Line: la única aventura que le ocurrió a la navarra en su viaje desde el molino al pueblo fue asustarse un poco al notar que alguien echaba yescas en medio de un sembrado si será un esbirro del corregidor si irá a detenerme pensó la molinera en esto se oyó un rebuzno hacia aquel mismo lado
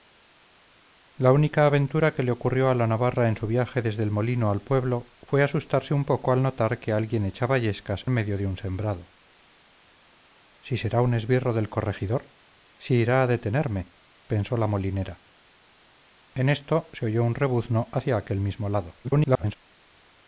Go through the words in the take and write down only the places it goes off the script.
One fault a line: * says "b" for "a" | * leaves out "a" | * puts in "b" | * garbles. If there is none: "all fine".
* leaves out "en"
* garbles